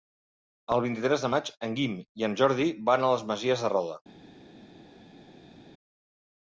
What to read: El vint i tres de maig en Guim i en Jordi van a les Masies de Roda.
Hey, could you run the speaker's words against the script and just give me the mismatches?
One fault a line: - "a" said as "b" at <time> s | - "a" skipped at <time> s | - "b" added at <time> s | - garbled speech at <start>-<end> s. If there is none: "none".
none